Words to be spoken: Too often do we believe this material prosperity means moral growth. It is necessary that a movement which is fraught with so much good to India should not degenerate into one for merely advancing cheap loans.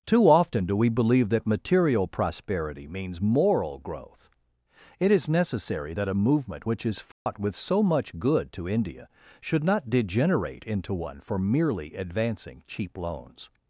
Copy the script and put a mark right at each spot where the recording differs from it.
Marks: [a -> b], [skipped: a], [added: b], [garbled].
Too often do we believe [this -> that] material prosperity means moral growth. It is necessary that a movement which is fraught with so much good to India should not degenerate into one for merely advancing cheap loans.